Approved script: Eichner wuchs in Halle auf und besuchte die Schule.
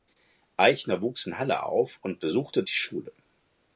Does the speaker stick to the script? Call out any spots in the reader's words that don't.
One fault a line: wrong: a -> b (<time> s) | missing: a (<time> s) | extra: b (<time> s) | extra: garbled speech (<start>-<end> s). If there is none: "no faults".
no faults